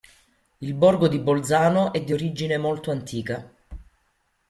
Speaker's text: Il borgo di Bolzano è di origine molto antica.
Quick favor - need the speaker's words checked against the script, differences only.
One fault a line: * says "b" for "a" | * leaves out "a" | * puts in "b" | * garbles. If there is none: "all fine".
all fine